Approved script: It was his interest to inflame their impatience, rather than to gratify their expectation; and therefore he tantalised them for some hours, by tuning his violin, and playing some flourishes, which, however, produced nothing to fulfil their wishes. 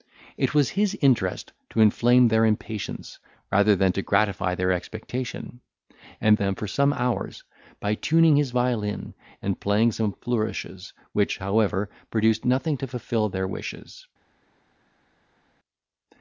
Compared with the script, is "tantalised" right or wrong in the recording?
wrong